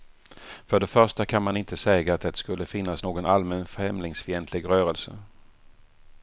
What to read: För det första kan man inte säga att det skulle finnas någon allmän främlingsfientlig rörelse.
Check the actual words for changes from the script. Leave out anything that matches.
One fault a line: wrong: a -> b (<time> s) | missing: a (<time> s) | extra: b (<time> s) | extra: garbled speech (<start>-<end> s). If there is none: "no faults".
no faults